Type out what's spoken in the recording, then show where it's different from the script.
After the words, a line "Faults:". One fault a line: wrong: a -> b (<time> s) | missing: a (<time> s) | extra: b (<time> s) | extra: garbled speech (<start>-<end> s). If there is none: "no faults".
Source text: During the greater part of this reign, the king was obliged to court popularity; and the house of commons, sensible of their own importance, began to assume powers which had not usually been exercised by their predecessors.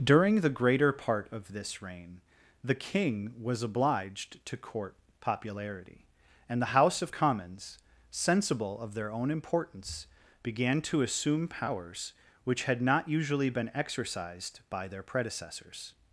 During the greater part of this reign, the king was obliged to court popularity; and the house of commons, sensible of their own importance, began to assume powers which had not usually been exercised by their predecessors.
Faults:
no faults